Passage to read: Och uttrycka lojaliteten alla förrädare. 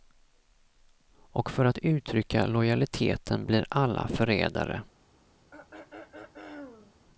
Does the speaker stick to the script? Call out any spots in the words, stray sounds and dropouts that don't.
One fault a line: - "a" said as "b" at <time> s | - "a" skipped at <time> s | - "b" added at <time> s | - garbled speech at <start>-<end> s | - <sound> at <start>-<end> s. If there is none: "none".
- "för att" added at 1.5 s
- "blir" added at 3.5 s
- throat clearing at 5.5-7.0 s